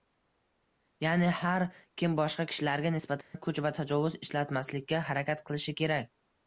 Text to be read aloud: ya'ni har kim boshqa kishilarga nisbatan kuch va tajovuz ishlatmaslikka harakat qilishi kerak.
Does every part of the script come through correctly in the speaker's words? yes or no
yes